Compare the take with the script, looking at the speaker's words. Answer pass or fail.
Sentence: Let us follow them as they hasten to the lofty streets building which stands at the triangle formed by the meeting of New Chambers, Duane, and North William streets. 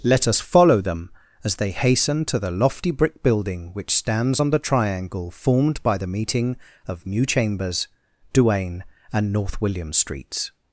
fail